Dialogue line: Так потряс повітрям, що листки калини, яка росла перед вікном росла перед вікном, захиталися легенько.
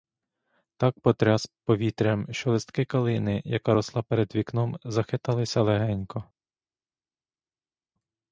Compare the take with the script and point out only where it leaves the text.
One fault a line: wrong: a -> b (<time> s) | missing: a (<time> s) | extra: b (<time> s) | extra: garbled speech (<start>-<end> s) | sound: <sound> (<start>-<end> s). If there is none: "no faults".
missing: росла перед вікном (4.8 s)